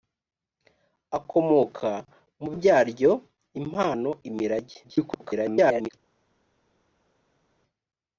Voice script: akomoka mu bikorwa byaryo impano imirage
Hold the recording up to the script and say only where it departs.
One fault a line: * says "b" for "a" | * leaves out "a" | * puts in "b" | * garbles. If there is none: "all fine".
* leaves out "bikorwa"
* garbles